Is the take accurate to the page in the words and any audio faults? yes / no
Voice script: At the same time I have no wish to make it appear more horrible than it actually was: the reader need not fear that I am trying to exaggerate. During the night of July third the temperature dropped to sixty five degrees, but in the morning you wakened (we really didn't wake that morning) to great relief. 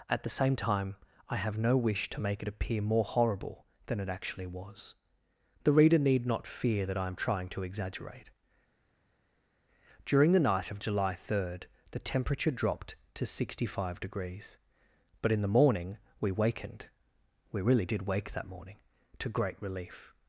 no